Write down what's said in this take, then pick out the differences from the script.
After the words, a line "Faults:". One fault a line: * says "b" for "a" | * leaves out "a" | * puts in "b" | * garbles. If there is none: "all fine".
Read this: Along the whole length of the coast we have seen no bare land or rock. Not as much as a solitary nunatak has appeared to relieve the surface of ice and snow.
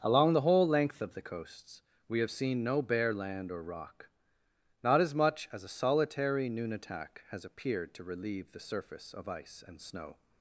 Along the whole length of the coasts we have seen no bare land or rock. Not as much as a solitary nunatak has appeared to relieve the surface of ice and snow.
Faults:
* says "coasts" for "coast"